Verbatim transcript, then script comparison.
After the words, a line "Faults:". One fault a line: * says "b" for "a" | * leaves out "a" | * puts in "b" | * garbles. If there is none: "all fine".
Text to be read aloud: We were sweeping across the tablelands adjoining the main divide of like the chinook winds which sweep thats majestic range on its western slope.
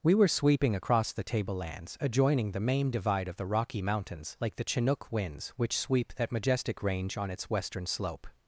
We were sweeping across the tablelands adjoining the main divide of the Rocky Mountains like the chinook winds which sweep that majestic range on its western slope.
Faults:
* puts in "the Rocky Mountains"
* says "that" for "thats"